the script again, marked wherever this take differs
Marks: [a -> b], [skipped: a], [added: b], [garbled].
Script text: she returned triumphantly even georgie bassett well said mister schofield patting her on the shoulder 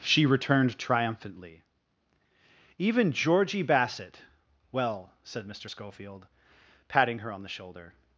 she returned triumphantly even georgie bassett well said mister schofield patting her on the shoulder